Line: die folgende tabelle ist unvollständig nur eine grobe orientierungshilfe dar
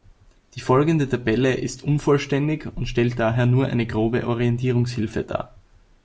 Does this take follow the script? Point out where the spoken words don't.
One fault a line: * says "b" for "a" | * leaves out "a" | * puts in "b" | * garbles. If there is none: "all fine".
* puts in "und stellt daher"